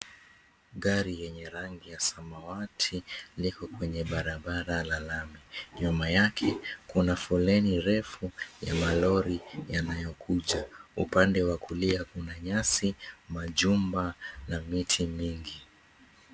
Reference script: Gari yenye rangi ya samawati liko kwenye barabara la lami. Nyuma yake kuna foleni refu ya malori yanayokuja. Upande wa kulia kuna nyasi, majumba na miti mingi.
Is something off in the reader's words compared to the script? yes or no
no